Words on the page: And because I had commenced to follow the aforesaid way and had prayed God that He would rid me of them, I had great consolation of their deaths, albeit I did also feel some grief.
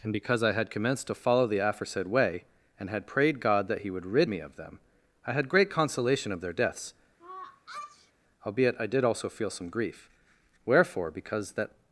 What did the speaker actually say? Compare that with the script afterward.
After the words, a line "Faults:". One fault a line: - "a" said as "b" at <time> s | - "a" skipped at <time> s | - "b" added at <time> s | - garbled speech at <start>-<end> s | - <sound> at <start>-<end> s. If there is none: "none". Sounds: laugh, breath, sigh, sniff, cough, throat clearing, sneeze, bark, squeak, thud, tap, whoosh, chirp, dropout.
And because I had commenced to follow the aforesaid way and had prayed God that He would rid me of them, I had great consolation of their deaths, albeit I did also feel some grief. Wherefore, because that
Faults:
- sneeze at 7.2-8.1 s
- "Wherefore because that" added at 10.7 s